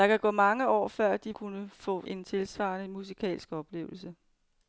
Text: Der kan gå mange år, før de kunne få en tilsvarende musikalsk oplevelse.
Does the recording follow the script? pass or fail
pass